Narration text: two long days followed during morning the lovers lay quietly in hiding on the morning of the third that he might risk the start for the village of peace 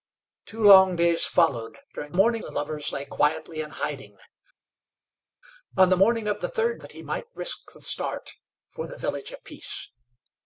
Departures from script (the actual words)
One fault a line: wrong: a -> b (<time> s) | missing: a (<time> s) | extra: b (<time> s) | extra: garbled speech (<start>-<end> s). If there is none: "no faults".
no faults